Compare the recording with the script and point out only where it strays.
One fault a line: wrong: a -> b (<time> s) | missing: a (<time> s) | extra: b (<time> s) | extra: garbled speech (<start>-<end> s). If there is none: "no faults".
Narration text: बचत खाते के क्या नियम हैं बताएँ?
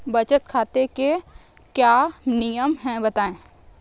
no faults